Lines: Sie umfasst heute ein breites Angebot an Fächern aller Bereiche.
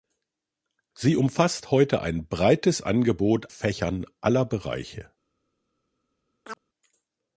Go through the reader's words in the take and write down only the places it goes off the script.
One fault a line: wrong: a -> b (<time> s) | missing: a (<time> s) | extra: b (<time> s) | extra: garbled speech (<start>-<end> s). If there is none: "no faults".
missing: an (3.5 s)